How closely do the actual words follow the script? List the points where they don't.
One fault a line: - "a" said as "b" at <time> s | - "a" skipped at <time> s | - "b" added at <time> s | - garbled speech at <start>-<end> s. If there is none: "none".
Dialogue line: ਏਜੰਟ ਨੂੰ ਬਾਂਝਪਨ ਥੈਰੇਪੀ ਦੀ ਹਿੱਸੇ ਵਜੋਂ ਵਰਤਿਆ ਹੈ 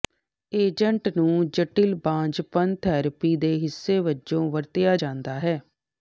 - "ਜਟਿਲ" added at 1.5 s
- "ਦੀ" said as "ਦੇ" at 3.4 s
- "ਜਾਂਦਾ" added at 4.9 s